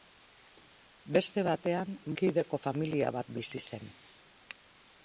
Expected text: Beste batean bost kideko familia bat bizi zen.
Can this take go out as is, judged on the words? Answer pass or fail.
fail